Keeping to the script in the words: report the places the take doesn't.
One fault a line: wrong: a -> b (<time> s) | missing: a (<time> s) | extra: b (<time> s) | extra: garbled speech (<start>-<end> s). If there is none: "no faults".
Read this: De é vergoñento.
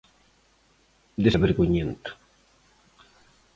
no faults